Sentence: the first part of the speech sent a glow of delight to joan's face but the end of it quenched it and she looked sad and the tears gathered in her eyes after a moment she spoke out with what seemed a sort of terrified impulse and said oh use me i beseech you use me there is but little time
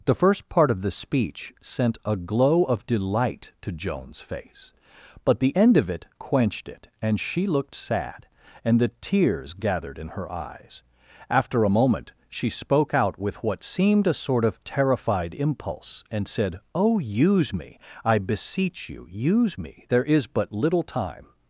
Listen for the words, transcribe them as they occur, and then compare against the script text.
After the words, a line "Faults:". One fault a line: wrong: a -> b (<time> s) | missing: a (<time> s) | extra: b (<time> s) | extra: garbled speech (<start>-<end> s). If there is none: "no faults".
the first part of the speech sent a glow of delight to joan's face but the end of it quenched it and she looked sad and the tears gathered in her eyes after a moment she spoke out with what seemed a sort of terrified impulse and said oh use me i beseech you use me there is but little time
Faults:
no faults